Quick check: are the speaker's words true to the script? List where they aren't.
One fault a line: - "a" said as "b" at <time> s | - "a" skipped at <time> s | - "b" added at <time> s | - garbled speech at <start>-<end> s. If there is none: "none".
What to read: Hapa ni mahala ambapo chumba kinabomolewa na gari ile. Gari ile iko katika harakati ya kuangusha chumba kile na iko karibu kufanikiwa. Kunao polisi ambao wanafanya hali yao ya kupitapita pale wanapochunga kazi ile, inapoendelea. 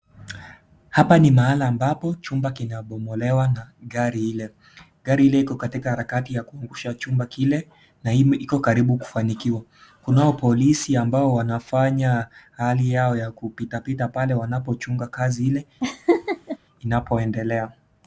none